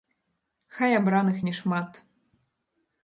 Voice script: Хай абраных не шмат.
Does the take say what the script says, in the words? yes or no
yes